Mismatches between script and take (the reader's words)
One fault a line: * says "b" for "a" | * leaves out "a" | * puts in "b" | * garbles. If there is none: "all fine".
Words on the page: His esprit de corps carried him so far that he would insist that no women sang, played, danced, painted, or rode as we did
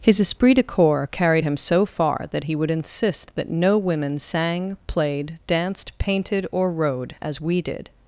all fine